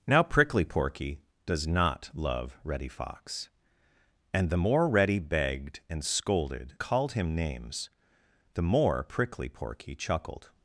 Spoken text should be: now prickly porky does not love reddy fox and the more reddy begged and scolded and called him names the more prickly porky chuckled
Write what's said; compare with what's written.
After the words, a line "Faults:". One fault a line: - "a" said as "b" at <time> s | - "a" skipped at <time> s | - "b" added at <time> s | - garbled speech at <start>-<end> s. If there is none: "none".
now prickly porky does not love reddy fox and the more reddy begged and scolded called him names the more prickly porky chuckled
Faults:
- "and" skipped at 6.8 s